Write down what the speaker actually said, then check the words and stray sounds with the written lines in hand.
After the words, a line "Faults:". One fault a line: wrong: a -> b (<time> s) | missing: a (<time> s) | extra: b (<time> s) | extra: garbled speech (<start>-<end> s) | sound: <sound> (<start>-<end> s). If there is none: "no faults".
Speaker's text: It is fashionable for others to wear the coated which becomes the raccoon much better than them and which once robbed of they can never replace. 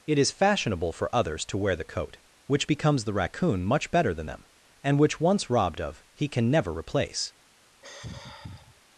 It is fashionable for others to wear the coat which becomes the raccoon much better than them and which once robbed of he can never replace.
Faults:
wrong: coated -> coat (1.8 s)
wrong: they -> he (6.1 s)
sound: sigh (7.8-8.8 s)